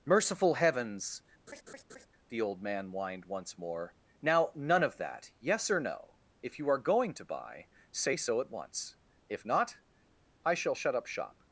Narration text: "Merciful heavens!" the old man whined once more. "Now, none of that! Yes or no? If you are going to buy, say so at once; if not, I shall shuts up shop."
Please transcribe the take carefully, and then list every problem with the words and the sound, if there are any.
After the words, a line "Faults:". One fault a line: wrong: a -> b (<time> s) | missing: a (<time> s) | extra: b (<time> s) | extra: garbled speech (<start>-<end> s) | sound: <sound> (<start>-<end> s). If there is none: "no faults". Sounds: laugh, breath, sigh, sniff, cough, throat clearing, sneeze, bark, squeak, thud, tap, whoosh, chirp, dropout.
"Merciful heavens!" the old man whined once more. "Now, none of that! Yes or no? If you are going to buy, say so at once; if not, I shall shut up shop."
Faults:
sound: laugh (1.5-2.1 s)
wrong: shuts -> shut (10.8 s)